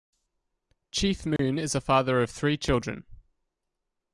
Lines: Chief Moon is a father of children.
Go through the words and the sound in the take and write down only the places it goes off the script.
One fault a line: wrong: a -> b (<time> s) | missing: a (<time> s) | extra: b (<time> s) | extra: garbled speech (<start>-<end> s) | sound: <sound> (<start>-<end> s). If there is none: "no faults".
sound: dropout (1.4-1.4 s)
extra: three (2.3 s)